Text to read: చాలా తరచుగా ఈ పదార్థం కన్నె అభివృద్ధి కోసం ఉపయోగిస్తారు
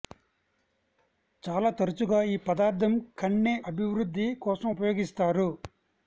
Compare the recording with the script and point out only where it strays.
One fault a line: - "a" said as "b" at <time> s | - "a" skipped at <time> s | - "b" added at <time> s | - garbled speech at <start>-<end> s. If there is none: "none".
none